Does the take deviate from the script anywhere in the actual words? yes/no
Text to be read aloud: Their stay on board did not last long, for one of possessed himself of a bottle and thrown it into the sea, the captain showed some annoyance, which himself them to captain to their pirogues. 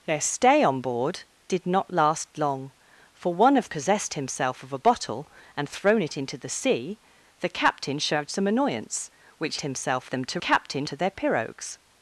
no